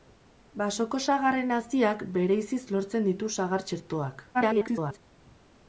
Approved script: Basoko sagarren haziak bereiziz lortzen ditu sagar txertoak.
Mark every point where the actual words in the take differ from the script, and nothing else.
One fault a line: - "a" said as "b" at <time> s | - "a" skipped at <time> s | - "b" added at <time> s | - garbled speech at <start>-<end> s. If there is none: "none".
- garbled speech at 4.3-5.0 s